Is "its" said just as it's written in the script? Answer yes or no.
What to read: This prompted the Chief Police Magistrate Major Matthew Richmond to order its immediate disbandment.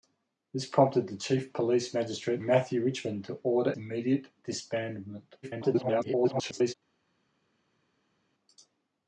no